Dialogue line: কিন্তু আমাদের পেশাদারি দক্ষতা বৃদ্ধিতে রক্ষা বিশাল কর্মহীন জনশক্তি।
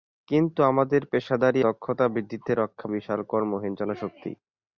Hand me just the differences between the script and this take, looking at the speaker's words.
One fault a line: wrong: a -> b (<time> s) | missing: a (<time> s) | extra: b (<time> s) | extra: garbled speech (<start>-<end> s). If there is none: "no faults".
no faults